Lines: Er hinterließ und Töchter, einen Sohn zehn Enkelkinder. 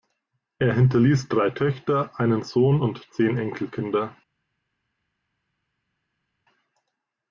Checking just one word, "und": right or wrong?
wrong